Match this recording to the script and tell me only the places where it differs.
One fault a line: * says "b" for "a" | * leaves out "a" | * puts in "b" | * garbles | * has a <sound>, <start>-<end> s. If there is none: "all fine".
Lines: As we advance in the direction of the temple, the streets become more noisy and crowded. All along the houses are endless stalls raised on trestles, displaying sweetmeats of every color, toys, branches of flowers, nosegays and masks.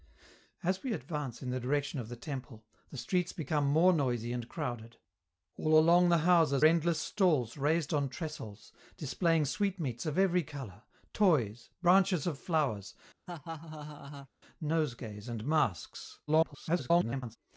* leaves out "are"
* has a laugh, 13.3-14.3 s
* garbles